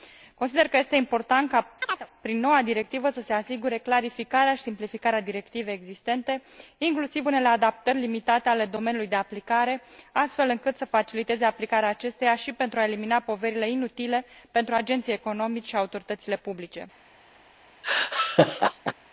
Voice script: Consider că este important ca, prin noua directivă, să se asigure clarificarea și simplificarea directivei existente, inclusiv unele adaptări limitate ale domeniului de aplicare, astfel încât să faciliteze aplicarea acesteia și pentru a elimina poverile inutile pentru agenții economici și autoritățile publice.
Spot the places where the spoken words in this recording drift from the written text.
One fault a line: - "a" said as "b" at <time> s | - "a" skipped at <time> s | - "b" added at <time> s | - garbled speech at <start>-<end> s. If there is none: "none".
none